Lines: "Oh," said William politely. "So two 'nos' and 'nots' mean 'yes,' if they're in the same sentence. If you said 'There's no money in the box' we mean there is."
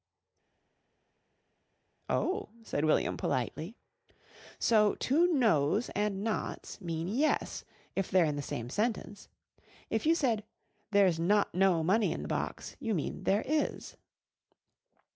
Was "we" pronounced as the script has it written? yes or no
no